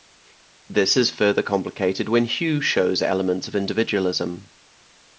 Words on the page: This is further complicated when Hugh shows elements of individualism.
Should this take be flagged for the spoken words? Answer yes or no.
no